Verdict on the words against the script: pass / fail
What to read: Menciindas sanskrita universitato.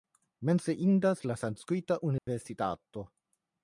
fail